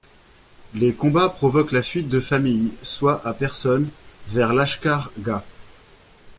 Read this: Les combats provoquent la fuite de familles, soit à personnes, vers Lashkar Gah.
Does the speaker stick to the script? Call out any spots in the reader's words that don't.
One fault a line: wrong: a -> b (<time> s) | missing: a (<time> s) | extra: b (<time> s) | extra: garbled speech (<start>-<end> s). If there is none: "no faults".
no faults